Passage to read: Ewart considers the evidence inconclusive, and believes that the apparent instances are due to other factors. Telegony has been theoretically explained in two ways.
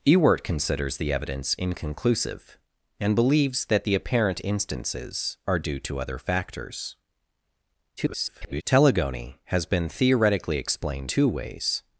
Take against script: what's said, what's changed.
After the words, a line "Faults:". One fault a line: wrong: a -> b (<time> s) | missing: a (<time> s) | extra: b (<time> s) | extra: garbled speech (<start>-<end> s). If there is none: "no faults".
Ewart considers the evidence inconclusive, and believes that the apparent instances are due to other factors. [garbled] Telegony has been theoretically explained two ways.
Faults:
extra: garbled speech (8.0-8.6 s)
missing: in (11.1 s)